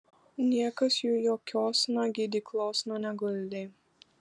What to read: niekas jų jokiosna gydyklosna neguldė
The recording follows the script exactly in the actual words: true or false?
true